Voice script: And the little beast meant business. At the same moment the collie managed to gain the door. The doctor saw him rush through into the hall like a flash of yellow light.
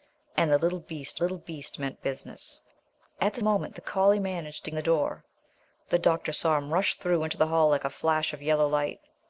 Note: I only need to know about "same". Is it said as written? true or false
false